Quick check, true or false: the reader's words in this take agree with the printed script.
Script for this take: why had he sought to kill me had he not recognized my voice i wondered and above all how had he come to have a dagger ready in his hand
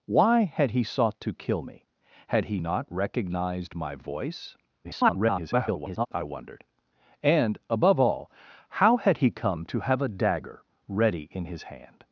false